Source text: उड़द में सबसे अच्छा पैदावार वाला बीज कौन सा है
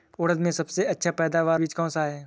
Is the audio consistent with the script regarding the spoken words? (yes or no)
no